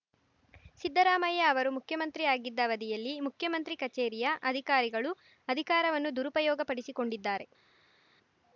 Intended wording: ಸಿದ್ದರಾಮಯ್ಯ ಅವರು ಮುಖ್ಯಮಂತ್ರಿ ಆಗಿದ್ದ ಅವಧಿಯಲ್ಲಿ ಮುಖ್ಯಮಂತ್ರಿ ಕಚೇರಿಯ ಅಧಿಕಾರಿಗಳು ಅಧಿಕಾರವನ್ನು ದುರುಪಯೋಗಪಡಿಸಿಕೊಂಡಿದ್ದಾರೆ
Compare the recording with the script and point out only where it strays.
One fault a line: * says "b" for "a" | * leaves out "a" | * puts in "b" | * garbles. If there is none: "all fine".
all fine